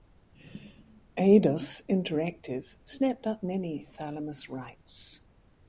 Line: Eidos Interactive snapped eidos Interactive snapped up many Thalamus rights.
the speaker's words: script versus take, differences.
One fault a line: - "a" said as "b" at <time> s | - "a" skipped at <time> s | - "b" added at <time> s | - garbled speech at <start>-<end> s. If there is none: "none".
- "eidos Interactive snapped" skipped at 3.3 s